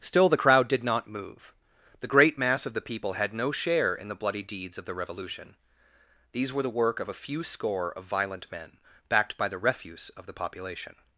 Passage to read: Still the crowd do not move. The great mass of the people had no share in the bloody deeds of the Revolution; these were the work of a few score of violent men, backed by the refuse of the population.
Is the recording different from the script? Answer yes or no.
yes